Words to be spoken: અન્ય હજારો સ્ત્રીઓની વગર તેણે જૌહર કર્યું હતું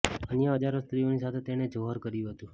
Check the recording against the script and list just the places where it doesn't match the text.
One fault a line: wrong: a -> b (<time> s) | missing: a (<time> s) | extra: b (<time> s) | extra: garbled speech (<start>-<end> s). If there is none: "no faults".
wrong: વગર -> સાથે (1.2 s)